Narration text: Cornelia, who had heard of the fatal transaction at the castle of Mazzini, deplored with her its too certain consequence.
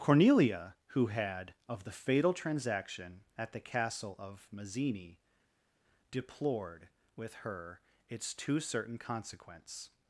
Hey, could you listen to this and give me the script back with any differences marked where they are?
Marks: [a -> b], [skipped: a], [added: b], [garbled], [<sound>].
Cornelia, who had [skipped: heard] of the fatal transaction at the castle of Mazzini, deplored with her its too certain consequence.